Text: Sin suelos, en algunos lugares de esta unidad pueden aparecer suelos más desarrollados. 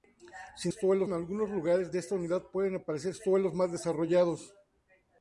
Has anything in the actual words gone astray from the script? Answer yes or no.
no